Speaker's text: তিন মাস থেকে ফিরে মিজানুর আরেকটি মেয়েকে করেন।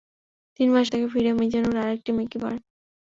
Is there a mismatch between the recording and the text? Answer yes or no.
no